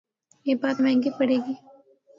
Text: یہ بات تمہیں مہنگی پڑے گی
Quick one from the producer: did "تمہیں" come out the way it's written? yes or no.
no